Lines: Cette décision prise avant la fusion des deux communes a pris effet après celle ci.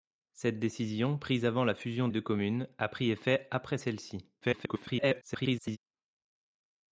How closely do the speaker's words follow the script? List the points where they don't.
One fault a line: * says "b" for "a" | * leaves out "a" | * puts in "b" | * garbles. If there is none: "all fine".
* leaves out "des"
* garbles